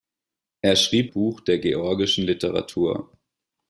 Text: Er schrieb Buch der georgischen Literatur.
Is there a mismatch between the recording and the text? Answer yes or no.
no